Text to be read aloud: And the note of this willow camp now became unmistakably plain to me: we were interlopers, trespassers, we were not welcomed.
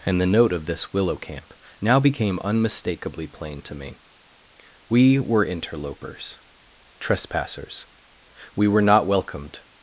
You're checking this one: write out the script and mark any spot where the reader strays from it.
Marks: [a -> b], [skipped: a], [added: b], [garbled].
And the note of this willow camp now became unmistakably plain to me: we were interlopers, trespassers, we were not welcomed.